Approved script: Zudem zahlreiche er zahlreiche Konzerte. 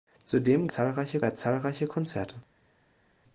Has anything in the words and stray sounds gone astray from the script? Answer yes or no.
no